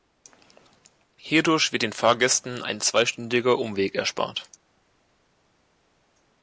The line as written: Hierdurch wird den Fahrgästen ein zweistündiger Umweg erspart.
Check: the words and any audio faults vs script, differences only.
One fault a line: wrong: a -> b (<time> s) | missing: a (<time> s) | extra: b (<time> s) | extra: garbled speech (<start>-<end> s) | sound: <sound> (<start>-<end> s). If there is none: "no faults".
no faults